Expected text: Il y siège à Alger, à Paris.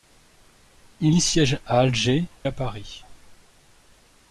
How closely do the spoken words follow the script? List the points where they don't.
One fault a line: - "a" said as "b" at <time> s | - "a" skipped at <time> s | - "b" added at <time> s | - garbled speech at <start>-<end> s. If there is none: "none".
none